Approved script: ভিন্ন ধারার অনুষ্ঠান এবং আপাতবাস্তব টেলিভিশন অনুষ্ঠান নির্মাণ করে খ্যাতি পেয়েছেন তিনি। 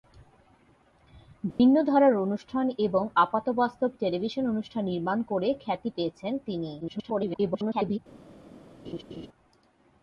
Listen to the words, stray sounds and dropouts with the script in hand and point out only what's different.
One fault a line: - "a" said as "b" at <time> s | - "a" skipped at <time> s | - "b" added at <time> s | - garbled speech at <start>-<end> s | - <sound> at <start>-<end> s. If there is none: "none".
- dropout at 1.5-1.6 s
- garbled speech at 6.8-8.0 s
- laugh at 8.8-9.3 s